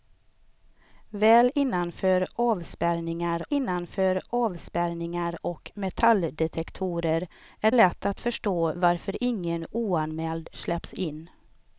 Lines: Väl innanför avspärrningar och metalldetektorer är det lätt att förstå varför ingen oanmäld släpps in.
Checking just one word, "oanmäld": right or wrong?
right